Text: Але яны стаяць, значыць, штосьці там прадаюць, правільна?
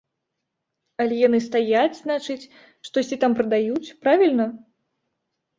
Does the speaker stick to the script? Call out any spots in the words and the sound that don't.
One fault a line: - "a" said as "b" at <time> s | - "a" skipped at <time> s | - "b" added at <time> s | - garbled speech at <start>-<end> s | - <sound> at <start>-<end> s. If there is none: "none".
none